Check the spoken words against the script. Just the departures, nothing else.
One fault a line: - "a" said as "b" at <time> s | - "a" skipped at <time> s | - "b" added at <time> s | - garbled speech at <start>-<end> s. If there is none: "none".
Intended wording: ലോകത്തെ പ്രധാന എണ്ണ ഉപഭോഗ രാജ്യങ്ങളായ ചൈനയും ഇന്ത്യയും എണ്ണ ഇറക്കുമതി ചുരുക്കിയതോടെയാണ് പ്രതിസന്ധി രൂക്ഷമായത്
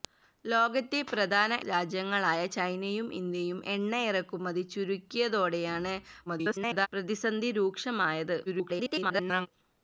- "എണ്ണ ഉപഭോഗ" skipped at 1.6 s
- garbled speech at 6.3-6.9 s
- garbled speech at 8.5-9.5 s